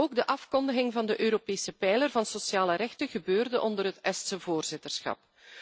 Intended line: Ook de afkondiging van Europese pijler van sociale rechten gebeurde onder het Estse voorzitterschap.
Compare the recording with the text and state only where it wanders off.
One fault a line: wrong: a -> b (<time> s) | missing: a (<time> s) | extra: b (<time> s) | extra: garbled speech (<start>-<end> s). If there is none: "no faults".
extra: de (1.1 s)